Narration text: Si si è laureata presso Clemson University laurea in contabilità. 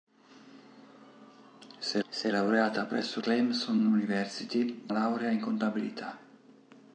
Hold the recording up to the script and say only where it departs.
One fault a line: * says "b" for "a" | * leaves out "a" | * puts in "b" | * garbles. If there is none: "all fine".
all fine